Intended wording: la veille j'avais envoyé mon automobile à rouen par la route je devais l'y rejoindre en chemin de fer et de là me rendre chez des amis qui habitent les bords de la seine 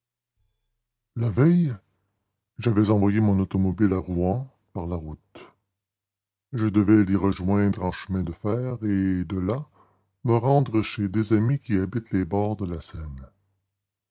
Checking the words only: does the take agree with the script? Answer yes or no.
yes